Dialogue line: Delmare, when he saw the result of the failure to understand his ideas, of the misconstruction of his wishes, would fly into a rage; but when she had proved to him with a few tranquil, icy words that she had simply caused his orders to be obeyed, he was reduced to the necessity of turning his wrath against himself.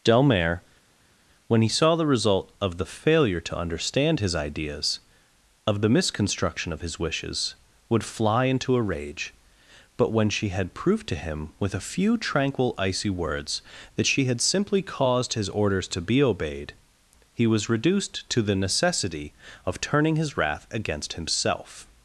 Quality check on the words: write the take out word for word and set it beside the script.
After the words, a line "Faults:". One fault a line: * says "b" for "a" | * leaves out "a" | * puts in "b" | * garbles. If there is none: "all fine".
Delmare, when he saw the result of the failure to understand his ideas, of the misconstruction of his wishes, would fly into a rage; but when she had proved to him with a few tranquil, icy words that she had simply caused his orders to be obeyed, he was reduced to the necessity of turning his wrath against himself.
Faults:
all fine